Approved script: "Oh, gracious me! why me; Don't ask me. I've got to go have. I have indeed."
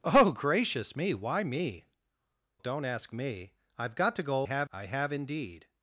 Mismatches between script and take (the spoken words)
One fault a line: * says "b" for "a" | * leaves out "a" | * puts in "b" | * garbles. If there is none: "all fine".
all fine